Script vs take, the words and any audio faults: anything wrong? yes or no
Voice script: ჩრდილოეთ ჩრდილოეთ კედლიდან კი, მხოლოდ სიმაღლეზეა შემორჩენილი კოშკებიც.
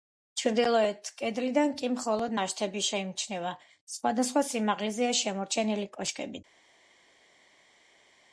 yes